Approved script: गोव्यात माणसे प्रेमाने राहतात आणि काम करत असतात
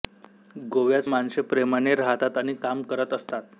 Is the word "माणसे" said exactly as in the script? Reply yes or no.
yes